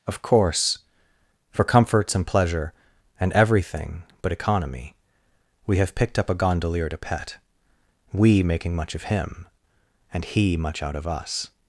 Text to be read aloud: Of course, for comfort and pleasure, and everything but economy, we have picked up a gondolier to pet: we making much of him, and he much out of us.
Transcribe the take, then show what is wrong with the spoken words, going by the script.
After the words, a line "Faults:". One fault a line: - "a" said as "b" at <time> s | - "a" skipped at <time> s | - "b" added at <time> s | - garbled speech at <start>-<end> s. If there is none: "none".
Of course, for comforts and pleasure, and everything but economy, we have picked up a gondolier to pet: we making much of him, and he much out of us.
Faults:
- "comfort" said as "comforts" at 1.6 s